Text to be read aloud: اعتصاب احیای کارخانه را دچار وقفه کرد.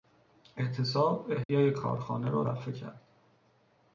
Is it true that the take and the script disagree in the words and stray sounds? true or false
true